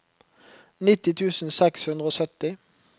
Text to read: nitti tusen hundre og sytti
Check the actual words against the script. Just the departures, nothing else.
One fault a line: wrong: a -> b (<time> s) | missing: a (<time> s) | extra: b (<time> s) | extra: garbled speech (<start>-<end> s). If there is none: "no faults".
extra: seks (1.6 s)